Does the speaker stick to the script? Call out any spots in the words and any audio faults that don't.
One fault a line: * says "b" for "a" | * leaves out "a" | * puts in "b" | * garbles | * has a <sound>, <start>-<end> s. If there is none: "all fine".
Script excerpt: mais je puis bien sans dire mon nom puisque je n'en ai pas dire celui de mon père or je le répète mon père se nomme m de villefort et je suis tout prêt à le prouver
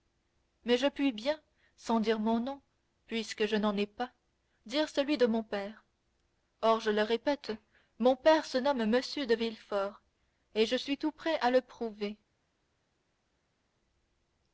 all fine